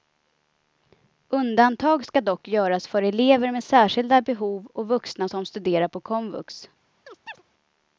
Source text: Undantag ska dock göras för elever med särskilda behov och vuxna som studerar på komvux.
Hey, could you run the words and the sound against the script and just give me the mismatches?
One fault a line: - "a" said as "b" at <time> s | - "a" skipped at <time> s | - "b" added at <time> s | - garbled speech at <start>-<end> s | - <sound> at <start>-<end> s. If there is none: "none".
- chirp at 7.1-7.4 s